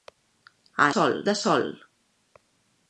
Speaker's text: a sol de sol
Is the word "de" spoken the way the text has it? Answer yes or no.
yes